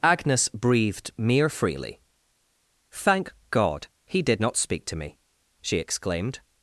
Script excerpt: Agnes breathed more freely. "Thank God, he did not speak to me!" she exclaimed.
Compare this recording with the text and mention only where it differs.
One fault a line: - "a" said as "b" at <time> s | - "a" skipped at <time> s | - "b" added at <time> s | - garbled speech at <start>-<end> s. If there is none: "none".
- "more" said as "mere" at 1.2 s